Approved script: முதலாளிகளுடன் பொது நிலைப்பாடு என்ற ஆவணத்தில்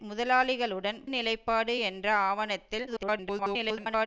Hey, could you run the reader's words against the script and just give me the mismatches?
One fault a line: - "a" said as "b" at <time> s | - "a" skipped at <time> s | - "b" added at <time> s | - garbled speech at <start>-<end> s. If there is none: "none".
- "பொது" skipped at 1.0 s
- garbled speech at 2.9-4.1 s